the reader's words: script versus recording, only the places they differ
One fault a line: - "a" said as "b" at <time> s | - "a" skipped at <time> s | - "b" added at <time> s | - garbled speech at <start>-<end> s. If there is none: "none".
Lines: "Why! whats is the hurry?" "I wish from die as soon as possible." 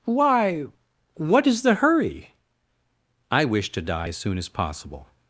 - "whats" said as "what" at 1.1 s
- "from" said as "to" at 3.7 s